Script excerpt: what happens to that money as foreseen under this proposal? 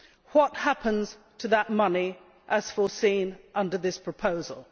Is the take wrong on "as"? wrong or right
right